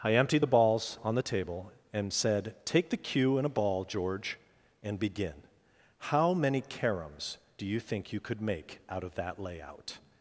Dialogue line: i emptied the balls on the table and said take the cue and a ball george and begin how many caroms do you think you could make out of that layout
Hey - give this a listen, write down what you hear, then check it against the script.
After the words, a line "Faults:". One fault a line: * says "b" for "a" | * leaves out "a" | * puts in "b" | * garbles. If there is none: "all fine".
i emptied the balls on the table and said take the cue and a ball george and begin how many caroms do you think you could make out of that layout
Faults:
all fine